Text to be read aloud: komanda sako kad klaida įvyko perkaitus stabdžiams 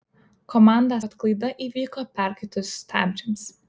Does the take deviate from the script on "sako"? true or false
true